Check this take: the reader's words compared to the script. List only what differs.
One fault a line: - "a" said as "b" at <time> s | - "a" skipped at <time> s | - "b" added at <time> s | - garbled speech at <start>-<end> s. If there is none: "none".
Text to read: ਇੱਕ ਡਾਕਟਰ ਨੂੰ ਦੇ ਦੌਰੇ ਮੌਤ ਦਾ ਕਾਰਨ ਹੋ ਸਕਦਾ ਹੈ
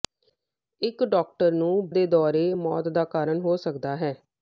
none